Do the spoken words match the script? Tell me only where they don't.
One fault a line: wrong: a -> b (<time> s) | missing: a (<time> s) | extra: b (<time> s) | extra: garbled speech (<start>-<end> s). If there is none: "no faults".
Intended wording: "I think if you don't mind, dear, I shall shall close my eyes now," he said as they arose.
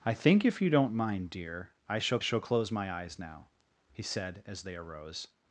no faults